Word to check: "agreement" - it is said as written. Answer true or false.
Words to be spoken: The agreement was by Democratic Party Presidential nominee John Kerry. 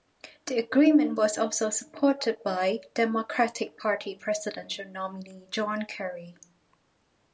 true